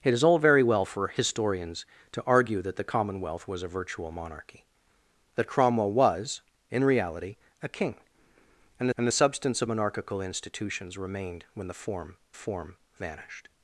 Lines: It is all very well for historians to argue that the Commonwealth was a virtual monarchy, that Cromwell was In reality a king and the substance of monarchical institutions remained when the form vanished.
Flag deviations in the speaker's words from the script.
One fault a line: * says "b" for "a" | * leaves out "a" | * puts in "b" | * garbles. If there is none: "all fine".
* puts in "and"
* puts in "form"